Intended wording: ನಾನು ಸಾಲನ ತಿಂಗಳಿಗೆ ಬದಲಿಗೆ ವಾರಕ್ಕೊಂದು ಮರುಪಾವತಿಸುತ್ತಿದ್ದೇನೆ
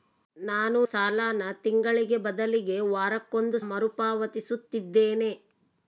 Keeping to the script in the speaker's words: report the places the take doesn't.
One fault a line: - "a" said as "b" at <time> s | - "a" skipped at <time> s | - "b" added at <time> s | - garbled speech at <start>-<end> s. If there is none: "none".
none